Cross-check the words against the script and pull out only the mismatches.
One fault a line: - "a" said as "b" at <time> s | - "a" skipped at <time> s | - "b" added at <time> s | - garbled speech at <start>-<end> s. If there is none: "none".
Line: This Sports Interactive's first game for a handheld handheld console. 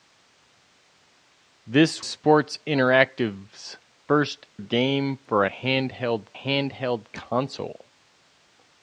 none